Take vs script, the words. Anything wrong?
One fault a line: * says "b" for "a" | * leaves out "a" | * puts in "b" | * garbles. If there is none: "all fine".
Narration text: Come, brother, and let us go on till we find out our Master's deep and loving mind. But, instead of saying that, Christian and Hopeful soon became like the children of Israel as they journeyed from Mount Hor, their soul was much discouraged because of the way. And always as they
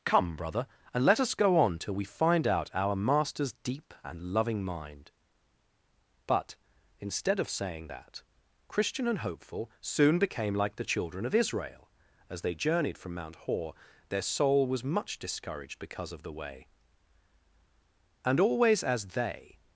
all fine